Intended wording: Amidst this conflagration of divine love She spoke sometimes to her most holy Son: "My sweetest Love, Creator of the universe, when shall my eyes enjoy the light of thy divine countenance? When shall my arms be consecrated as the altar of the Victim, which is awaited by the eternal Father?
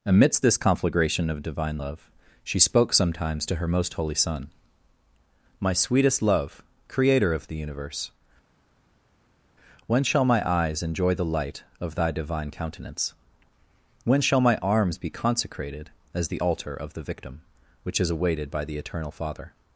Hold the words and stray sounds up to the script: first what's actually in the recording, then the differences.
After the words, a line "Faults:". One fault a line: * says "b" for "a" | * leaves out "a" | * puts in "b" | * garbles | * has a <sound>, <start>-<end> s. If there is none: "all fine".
Amidst this conflagration of divine love She spoke sometimes to her most holy Son: "My sweetest Love, Creator of the universe, when shall my eyes enjoy the light of thy divine countenance? When shall my arms be consecrated as the altar of the Victim, which is awaited by the eternal Father?
Faults:
all fine